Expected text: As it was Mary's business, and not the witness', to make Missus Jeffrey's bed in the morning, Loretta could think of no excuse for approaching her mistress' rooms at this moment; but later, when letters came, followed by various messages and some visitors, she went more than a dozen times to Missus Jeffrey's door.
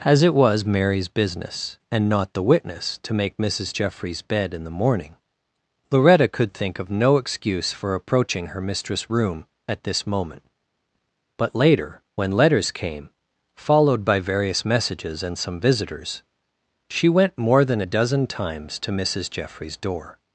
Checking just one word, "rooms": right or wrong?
wrong